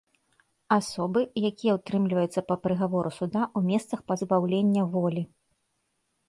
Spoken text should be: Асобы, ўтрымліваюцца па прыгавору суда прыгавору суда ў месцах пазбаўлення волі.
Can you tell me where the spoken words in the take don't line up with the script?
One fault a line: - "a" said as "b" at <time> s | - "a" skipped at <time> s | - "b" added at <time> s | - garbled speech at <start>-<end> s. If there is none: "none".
- "якія" added at 1.5 s
- "прыгавору суда" skipped at 3.4 s